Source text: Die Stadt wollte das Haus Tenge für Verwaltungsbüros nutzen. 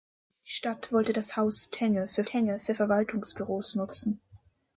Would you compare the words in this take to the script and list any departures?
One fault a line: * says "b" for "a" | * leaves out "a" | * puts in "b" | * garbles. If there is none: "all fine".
* puts in "Tenge für"